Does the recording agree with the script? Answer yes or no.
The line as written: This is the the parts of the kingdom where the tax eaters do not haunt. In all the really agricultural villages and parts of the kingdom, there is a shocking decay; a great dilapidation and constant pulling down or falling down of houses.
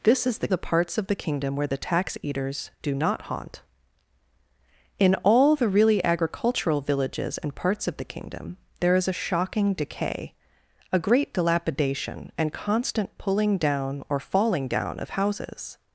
yes